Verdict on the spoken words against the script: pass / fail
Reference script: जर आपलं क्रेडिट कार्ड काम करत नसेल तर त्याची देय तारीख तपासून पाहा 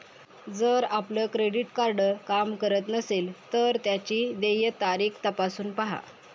pass